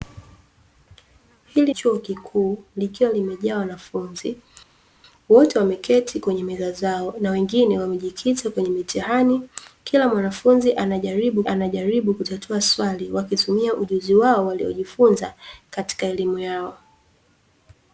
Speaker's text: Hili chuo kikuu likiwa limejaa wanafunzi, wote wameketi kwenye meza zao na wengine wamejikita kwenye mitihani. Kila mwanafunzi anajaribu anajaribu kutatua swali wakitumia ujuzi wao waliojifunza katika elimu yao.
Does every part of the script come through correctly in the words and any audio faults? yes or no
yes